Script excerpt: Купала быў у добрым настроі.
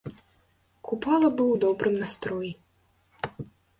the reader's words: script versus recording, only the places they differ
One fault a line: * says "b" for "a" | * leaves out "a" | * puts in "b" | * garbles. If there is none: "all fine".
all fine